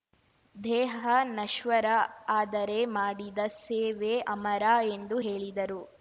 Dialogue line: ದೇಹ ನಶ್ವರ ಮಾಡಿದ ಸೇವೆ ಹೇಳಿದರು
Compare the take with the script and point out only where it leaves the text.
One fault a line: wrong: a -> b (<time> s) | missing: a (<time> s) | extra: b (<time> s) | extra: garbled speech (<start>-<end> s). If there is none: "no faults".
extra: ಆದರೆ (2.3 s)
extra: ಅಮರ ಎಂದು (4.3 s)